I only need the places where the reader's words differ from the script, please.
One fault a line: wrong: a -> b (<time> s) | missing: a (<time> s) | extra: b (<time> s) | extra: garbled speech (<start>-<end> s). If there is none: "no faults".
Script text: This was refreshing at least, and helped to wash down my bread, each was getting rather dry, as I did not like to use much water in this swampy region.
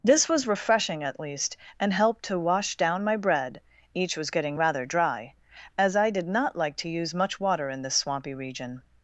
no faults